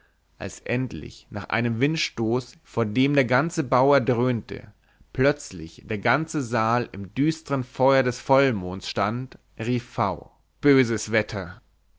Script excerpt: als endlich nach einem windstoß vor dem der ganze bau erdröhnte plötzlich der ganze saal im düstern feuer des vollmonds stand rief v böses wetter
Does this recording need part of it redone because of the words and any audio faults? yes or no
no